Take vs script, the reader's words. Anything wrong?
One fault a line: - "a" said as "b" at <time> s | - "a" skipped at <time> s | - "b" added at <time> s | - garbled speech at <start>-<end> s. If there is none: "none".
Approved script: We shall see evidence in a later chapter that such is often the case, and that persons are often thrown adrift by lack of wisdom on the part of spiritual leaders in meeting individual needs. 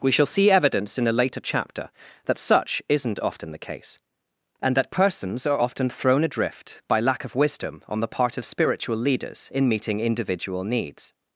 - "is" said as "isn't" at 2.9 s